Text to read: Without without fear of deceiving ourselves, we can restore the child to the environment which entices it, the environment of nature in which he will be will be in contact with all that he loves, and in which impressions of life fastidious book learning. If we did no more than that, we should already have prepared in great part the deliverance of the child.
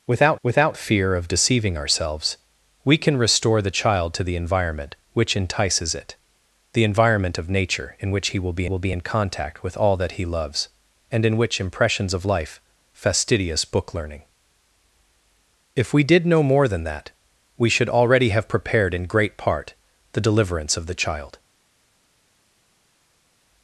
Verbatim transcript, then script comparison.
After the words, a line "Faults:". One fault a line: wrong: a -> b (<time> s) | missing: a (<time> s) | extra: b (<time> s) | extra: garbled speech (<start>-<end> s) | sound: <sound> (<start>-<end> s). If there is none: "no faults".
Without without fear of deceiving ourselves, we can restore the child to the environment which entices it, the environment of nature in which he will be will be in contact with all that he loves, and in which impressions of life fastidious book learning. If we did no more than that, we should already have prepared in great part the deliverance of the child.
Faults:
no faults